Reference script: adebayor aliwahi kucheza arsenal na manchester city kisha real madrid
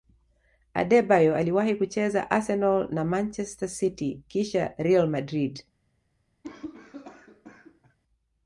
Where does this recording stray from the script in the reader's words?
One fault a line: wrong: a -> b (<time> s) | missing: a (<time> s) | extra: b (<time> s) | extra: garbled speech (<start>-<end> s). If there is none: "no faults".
no faults